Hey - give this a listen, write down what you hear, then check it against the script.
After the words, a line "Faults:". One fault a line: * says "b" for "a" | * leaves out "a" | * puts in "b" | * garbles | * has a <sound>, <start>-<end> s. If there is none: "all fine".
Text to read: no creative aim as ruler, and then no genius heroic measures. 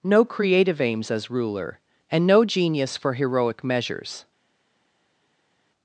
no creative aims as ruler, and no genius for heroic measures.
Faults:
* says "aims" for "aim"
* leaves out "then"
* puts in "for"